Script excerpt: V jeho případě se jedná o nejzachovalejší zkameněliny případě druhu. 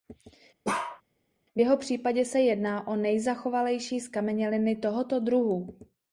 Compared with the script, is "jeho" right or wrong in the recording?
right